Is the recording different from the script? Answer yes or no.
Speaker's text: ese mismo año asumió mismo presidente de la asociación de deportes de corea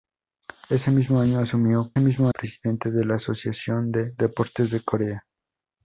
no